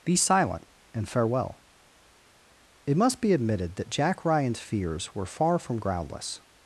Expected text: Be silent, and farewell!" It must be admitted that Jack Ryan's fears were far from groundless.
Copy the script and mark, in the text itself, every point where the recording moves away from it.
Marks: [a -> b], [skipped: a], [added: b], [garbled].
Be silent, and farewell!" It must be admitted that Jack Ryan's fears were far from groundless.